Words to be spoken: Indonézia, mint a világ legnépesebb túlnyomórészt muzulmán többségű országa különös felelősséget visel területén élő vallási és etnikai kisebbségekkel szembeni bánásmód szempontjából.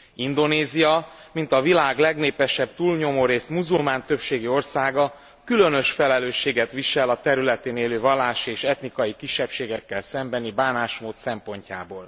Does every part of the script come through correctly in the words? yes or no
no